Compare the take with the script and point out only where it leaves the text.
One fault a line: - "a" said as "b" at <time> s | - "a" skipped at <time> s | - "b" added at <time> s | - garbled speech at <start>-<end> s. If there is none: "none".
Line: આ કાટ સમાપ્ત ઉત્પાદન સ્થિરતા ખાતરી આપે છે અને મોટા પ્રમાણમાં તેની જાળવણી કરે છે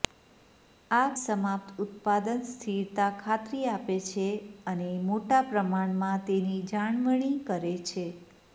- "કાટ" skipped at 1.1 s